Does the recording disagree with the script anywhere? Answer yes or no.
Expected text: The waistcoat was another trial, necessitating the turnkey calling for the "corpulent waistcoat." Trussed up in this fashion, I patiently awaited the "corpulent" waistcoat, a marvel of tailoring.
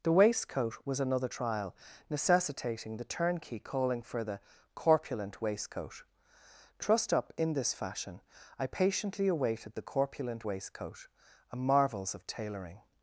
yes